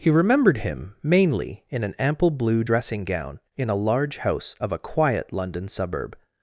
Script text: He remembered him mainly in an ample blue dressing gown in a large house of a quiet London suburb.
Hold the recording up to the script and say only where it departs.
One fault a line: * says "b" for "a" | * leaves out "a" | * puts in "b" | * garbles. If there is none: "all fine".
all fine